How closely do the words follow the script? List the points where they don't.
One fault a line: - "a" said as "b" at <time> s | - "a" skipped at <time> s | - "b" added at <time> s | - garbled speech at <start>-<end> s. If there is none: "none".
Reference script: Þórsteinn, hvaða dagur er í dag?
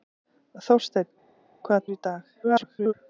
- "dagur" skipped at 1.9 s
- garbled speech at 2.4-2.9 s